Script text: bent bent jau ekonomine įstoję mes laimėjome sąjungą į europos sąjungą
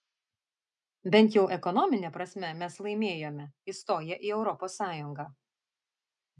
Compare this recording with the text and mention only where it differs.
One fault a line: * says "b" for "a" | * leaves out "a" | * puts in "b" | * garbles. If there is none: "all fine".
* leaves out "bent"
* says "prasme" for "įstoję"
* says "įstoję" for "sąjungą"